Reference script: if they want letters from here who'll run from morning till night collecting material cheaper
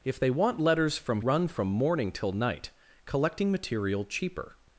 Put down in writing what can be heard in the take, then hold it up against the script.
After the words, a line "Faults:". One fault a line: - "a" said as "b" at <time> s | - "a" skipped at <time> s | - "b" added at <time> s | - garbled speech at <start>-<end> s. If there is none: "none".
if they want letters from run from morning till night collecting material cheaper
Faults:
- "here who'll" skipped at 1.2 s